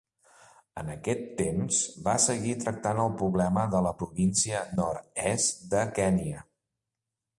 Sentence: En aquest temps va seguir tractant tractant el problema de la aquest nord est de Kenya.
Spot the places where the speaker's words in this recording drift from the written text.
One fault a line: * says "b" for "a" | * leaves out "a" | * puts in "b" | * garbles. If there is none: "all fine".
* leaves out "tractant"
* says "província" for "aquest"